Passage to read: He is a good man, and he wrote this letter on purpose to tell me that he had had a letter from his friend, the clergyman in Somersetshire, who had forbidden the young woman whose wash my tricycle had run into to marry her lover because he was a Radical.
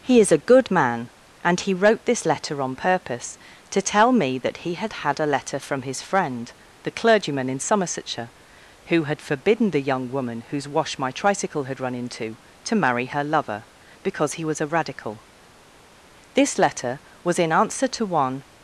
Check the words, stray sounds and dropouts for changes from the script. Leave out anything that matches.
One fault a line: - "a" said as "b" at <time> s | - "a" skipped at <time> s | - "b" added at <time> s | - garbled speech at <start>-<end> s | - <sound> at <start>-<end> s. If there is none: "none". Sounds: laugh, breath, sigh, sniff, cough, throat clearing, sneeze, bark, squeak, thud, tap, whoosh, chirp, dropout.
- "This letter was in answer to one" added at 16.3 s